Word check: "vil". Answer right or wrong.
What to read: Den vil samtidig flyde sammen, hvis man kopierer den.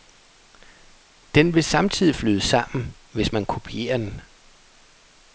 right